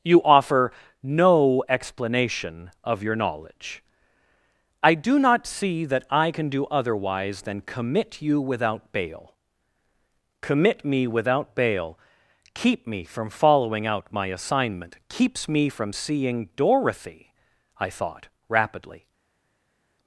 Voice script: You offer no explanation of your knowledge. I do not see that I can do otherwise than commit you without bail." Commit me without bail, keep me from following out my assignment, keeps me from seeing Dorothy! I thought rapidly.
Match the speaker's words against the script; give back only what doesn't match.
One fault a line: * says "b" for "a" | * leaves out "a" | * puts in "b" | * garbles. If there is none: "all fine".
all fine